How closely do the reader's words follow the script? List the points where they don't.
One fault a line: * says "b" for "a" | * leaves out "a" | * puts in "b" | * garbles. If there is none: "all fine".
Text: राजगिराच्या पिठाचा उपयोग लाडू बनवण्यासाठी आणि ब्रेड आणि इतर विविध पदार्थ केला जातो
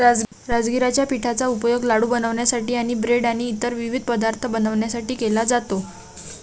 * puts in "बनवण्यासाठी"